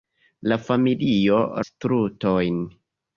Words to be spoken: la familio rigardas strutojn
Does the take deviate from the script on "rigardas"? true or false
true